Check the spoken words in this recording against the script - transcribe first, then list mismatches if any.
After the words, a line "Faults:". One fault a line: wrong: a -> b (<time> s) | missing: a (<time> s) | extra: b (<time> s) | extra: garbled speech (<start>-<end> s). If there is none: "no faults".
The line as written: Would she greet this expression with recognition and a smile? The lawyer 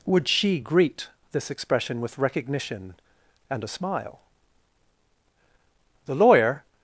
Would she greet this expression with recognition and a smile? The lawyer
Faults:
no faults